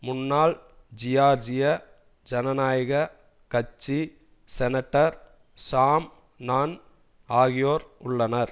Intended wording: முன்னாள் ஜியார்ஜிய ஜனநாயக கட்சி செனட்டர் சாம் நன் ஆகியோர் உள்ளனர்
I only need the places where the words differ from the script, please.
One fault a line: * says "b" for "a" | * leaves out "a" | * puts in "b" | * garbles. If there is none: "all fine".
all fine